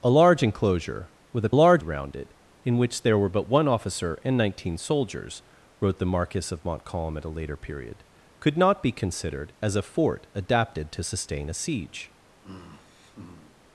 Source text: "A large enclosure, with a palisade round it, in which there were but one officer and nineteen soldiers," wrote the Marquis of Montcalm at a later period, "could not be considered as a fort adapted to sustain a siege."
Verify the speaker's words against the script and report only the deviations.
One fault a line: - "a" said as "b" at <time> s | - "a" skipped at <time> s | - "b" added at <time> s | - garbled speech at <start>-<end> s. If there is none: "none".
- "palisade" said as "large" at 1.5 s